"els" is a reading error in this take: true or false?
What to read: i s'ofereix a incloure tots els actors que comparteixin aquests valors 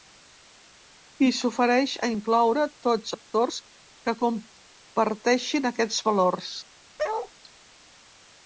true